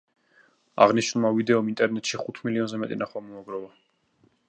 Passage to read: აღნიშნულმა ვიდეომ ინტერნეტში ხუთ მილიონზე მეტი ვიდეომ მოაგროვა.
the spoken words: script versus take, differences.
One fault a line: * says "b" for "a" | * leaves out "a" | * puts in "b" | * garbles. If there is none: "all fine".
* says "ნახვა" for "ვიდეომ"